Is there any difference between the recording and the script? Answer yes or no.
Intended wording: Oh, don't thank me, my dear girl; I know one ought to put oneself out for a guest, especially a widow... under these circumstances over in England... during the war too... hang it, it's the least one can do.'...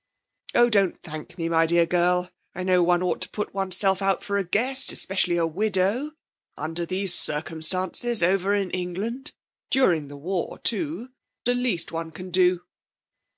yes